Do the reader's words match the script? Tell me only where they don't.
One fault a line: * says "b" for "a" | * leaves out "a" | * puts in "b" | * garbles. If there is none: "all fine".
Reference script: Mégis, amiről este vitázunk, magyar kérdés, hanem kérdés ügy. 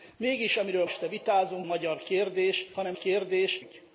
all fine